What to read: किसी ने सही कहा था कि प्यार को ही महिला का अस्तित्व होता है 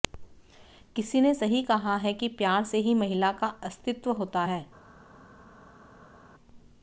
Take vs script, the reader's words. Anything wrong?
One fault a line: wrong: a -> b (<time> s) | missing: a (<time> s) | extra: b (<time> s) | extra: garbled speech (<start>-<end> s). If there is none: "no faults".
wrong: था -> है (2.0 s)
wrong: को -> से (2.6 s)